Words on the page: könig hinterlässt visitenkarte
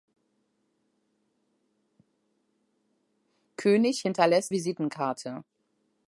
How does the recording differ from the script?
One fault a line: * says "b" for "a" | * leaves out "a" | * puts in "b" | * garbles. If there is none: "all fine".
all fine